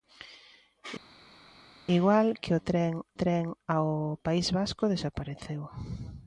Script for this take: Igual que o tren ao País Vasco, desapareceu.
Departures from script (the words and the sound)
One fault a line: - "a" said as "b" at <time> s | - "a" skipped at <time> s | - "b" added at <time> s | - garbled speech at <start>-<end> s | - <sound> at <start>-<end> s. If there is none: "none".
- "tren" added at 3.2 s